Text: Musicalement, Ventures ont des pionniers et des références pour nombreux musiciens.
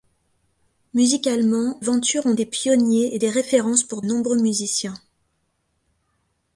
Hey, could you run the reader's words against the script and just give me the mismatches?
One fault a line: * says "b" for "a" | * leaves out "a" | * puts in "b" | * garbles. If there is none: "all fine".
all fine